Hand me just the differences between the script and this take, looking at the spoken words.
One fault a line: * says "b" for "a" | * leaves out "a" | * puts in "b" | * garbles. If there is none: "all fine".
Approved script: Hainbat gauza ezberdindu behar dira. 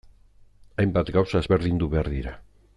all fine